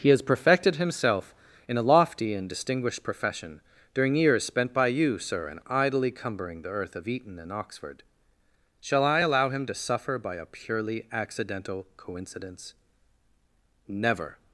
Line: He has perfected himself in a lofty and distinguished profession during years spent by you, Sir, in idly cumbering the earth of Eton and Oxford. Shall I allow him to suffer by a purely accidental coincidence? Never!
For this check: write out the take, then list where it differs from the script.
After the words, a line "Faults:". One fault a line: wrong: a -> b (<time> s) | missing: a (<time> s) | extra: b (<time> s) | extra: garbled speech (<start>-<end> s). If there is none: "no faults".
He has perfected himself in a lofty and distinguished profession during years spent by you, Sir, in idly cumbering the earth of Eton and Oxford. Shall I allow him to suffer by a purely accidental coincidence? Never!
Faults:
no faults